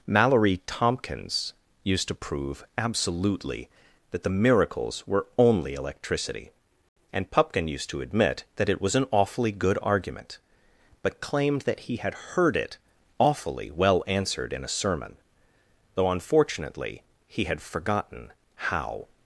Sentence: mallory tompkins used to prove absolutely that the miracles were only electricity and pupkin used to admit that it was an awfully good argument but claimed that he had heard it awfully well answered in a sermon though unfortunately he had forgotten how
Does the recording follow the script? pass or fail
pass